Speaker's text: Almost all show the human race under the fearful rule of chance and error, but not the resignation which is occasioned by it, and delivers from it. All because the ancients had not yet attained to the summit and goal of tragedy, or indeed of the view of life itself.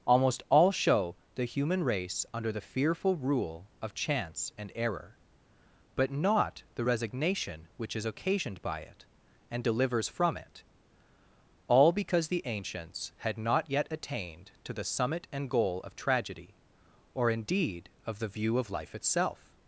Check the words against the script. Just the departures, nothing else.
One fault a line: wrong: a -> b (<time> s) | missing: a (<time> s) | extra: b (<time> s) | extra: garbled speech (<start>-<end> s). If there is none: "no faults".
no faults